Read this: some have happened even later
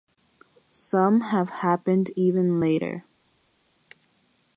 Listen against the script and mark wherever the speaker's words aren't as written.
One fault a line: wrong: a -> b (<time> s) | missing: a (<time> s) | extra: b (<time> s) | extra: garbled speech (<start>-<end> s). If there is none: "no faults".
no faults